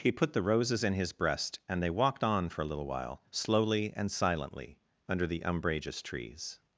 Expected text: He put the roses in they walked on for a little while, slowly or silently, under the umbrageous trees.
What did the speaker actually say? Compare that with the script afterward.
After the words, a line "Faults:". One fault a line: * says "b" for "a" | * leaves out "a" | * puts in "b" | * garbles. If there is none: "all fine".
He put the roses in his breast and they walked on for a little while, slowly and silently, under the umbrageous trees.
Faults:
* puts in "his breast and"
* says "and" for "or"